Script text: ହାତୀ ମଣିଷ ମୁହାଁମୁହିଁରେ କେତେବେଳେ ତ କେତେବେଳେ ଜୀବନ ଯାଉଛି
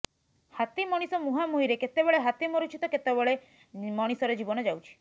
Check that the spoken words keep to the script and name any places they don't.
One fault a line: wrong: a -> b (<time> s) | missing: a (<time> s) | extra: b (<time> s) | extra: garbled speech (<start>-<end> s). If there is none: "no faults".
extra: ହାତୀ ମରୁଛି (2.2 s)
extra: ମଣିଷର (3.9 s)